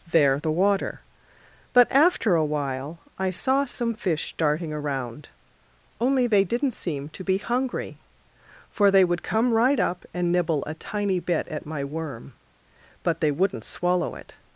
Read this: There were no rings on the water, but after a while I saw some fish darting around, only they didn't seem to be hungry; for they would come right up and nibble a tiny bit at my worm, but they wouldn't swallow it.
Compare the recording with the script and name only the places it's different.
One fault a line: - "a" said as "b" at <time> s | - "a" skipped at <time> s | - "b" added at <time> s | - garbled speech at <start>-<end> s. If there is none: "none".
- "were no rings on" skipped at 0.4 s